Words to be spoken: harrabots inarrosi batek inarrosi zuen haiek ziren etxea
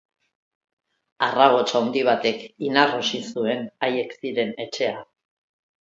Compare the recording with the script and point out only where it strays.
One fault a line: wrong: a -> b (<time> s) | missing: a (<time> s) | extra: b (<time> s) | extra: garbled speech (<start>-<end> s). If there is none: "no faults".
wrong: inarrosi -> handi (1.8 s)